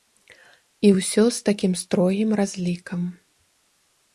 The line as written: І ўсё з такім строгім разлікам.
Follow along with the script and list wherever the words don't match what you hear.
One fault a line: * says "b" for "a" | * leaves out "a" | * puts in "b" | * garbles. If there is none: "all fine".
all fine